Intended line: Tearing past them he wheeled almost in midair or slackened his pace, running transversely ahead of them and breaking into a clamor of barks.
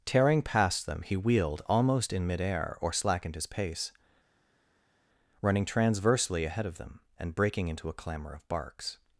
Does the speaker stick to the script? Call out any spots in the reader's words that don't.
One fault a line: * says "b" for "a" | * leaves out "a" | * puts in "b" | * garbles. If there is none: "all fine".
all fine